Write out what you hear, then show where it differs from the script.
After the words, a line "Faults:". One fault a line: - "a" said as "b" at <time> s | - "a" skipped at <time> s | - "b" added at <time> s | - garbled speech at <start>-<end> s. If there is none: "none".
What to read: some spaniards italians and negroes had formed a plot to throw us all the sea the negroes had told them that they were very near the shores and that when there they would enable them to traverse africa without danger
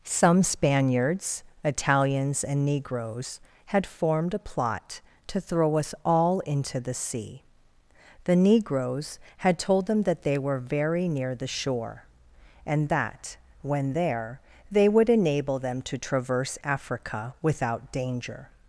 some spaniards italians and negroes had formed a plot to throw us all into the sea the negroes had told them that they were very near the shore and that when there they would enable them to traverse africa without danger
Faults:
- "into" added at 6.4 s
- "shores" said as "shore" at 11.5 s